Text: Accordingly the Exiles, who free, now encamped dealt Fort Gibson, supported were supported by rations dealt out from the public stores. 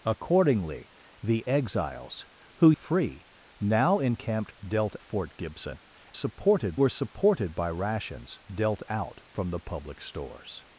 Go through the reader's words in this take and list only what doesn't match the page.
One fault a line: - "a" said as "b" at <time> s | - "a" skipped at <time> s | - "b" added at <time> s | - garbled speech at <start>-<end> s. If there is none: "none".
none